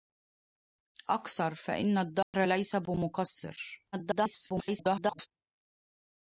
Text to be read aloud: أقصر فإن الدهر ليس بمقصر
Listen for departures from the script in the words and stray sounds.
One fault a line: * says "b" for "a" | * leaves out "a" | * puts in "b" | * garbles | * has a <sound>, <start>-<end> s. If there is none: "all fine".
* has a dropout, 2.2-2.3 s
* garbles